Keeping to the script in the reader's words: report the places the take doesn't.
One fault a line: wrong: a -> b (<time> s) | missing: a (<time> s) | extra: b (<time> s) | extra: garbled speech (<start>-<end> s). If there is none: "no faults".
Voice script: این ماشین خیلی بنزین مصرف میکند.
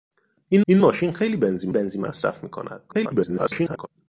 extra: این (0.7 s)
extra: بنزین (1.7 s)
extra: garbled speech (2.9-3.9 s)